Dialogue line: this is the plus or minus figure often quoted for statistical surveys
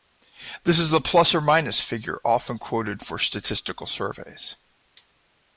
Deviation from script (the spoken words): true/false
false